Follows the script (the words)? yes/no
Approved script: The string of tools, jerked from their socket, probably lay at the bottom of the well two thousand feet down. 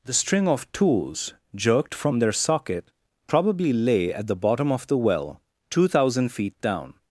yes